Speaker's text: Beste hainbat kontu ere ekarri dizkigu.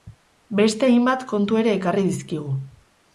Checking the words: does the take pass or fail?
pass